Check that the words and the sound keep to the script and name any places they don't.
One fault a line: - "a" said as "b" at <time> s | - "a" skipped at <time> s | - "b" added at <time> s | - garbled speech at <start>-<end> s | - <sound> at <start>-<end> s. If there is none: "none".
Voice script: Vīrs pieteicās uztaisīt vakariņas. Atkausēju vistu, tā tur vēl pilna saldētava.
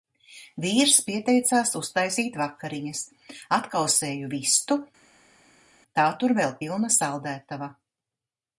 none